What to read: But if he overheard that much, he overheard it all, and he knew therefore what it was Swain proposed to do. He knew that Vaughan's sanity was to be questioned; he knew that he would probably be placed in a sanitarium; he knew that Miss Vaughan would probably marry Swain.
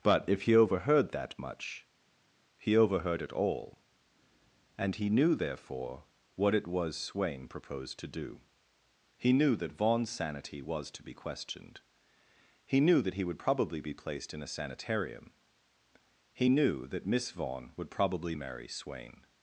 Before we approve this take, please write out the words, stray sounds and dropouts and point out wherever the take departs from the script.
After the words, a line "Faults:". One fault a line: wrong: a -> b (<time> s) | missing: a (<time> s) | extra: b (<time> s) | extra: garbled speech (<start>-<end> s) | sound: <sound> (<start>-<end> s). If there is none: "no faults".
But if he overheard that much, he overheard it all, and he knew therefore what it was Swain proposed to do. He knew that Vaughan's sanity was to be questioned; he knew that he would probably be placed in a sanitarium; he knew that Miss Vaughan would probably marry Swain.
Faults:
no faults